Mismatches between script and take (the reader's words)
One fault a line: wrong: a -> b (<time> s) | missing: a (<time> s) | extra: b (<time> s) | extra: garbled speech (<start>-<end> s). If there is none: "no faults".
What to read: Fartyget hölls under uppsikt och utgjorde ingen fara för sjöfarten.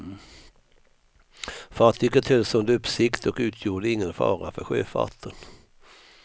no faults